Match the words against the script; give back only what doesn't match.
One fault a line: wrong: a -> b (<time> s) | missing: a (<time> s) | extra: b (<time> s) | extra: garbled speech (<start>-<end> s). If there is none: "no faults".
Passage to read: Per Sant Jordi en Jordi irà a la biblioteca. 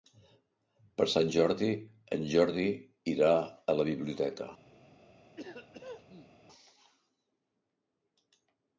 no faults